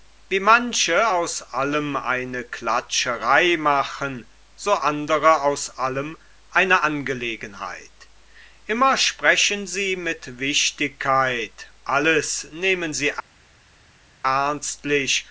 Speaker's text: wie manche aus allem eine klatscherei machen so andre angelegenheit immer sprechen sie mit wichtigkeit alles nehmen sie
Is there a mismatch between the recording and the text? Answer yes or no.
yes